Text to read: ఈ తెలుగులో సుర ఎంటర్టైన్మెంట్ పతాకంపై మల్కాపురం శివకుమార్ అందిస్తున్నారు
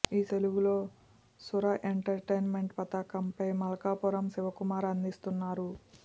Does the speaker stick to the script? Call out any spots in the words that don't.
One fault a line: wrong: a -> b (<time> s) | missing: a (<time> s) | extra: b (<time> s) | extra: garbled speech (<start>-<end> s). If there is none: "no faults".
no faults